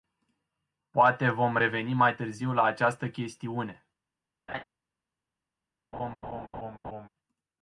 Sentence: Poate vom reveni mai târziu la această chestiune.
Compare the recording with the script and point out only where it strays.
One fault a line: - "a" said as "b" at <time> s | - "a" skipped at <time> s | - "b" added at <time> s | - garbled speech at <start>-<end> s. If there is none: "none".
none